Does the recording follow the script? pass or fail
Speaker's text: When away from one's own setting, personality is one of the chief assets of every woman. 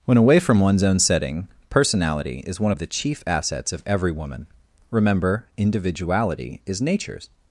fail